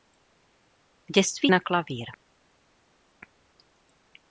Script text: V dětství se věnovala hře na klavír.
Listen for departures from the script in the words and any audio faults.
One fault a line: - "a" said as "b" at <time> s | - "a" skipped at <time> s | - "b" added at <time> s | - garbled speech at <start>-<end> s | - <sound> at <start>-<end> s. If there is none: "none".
- "se věnovala hře" skipped at 1.5 s